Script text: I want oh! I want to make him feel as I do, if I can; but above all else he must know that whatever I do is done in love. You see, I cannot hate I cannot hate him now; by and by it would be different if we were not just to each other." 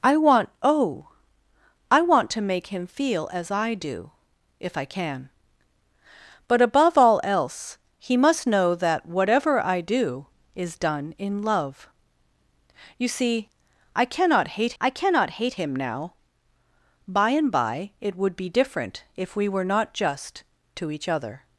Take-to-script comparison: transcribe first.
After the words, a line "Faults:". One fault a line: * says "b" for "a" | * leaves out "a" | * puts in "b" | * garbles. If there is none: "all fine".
I want oh! I want to make him feel as I do, if I can; but above all else he must know that whatever I do is done in love. You see, I cannot hate I cannot hate him now; by and by it would be different if we were not just to each other."
Faults:
all fine